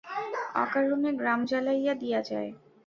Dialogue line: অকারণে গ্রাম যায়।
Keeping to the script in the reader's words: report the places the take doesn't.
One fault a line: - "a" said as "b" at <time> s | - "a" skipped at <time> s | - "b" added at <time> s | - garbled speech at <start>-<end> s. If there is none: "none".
- "জ্বালাইয়া দিয়া" added at 1.5 s